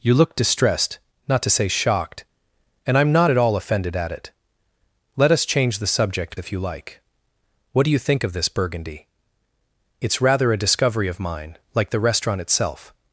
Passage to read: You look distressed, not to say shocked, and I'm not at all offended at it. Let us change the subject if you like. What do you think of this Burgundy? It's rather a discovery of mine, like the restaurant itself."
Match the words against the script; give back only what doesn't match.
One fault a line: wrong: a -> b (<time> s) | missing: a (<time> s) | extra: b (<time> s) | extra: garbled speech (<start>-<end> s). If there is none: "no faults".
no faults